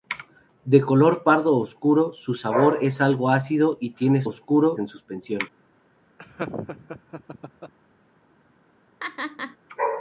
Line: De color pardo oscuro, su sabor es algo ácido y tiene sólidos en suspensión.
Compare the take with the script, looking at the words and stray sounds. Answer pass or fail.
fail